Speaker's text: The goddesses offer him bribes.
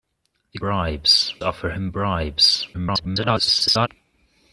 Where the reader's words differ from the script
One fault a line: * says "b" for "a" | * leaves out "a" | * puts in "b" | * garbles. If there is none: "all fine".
* says "bribes" for "goddesses"
* garbles